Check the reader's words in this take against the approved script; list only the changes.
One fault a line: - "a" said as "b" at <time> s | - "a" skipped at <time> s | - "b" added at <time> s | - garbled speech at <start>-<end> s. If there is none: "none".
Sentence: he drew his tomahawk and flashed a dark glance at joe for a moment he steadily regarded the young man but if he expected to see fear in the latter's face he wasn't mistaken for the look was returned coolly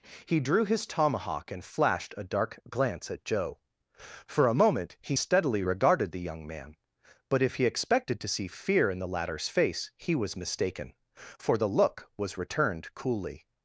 - "wasn't" said as "was" at 10.1 s